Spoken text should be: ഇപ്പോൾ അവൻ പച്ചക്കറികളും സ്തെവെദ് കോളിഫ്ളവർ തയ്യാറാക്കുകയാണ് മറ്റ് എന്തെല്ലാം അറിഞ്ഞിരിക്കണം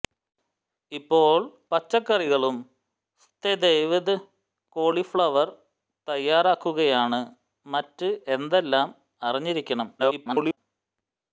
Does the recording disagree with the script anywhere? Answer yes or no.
yes